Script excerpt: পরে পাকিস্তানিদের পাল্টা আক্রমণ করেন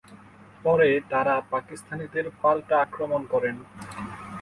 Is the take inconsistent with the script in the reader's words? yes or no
yes